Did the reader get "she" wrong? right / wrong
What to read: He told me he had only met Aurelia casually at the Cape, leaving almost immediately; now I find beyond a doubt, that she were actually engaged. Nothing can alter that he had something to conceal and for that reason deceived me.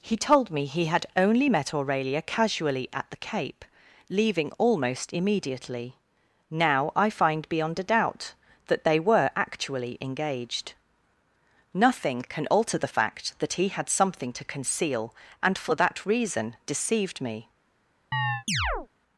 wrong